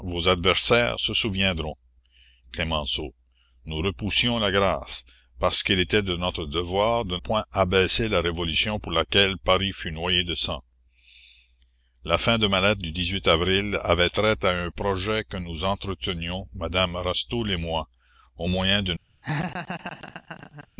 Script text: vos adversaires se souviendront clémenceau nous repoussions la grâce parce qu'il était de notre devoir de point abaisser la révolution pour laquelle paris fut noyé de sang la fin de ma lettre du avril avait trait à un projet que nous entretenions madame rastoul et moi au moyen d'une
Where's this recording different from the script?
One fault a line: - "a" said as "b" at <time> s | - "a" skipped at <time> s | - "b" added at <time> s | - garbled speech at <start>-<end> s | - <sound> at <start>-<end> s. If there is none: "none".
- laugh at 19.2-20.7 s